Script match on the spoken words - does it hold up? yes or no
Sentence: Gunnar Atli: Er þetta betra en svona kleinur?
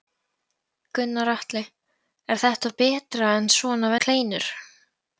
yes